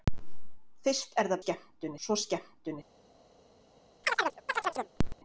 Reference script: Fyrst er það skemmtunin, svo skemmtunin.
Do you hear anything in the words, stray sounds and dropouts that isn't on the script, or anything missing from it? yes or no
yes